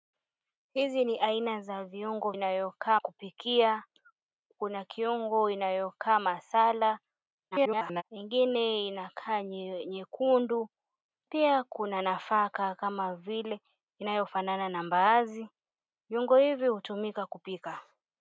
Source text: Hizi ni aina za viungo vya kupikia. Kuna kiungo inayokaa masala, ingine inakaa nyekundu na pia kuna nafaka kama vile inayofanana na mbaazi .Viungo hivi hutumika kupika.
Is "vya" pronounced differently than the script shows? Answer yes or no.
yes